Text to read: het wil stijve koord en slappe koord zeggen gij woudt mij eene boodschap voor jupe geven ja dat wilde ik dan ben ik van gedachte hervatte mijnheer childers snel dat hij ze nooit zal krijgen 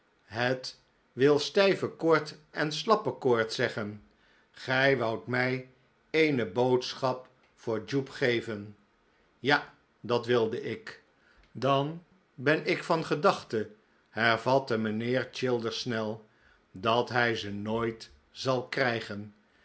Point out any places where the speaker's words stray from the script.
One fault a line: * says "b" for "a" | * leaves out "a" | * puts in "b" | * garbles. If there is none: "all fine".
all fine